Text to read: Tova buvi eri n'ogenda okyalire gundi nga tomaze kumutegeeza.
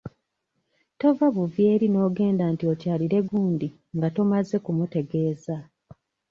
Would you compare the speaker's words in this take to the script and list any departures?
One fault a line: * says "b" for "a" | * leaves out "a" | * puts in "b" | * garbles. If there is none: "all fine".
* puts in "nti"